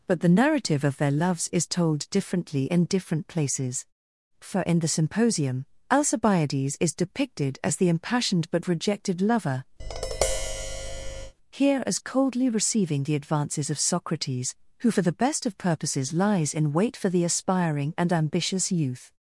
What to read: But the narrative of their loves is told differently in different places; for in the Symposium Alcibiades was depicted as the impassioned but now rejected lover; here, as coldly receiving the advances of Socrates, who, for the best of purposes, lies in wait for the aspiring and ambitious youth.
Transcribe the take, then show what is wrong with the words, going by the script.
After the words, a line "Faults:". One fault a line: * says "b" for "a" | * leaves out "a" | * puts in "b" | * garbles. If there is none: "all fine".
But the narrative of their loves is told differently in different places; for in the Symposium Alcibiades is depicted as the impassioned but rejected lover; here, as coldly receiving the advances of Socrates, who, for the best of purposes, lies in wait for the aspiring and ambitious youth.
Faults:
* says "is" for "was"
* leaves out "now"